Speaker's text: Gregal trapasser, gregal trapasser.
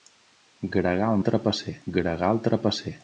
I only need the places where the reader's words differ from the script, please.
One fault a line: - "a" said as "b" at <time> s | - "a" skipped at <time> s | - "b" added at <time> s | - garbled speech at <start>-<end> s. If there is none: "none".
none